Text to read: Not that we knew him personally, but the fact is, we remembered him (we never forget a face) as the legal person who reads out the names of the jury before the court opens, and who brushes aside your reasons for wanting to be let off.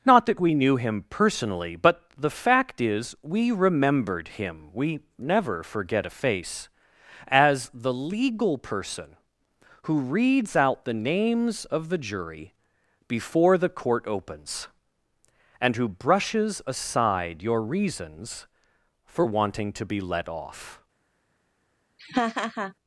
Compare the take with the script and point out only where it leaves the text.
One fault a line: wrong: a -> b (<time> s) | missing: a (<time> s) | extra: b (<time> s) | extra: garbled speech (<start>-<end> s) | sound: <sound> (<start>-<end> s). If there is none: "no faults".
sound: laugh (22.0-22.7 s)